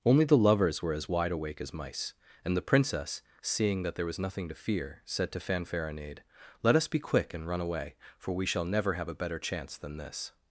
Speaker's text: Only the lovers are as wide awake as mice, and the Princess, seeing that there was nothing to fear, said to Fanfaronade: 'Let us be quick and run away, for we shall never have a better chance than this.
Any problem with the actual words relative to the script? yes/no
yes